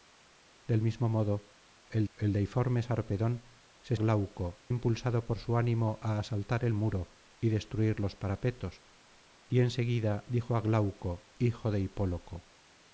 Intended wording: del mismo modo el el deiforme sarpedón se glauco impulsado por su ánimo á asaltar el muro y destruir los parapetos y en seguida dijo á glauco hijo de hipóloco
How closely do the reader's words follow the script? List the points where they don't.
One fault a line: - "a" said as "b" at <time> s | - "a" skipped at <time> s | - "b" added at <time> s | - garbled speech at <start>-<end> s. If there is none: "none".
none